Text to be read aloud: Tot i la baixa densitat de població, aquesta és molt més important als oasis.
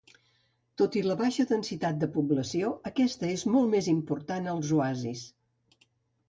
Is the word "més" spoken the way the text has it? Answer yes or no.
yes